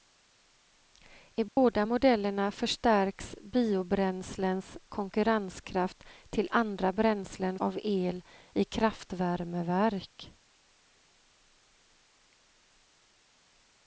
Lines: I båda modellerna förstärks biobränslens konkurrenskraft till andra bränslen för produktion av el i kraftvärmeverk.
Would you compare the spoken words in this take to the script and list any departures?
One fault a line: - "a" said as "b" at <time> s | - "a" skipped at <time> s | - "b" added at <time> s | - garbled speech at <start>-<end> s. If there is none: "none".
- "för produktion" skipped at 7.6 s